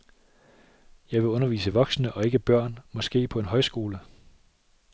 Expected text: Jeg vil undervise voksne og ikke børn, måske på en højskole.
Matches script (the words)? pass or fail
pass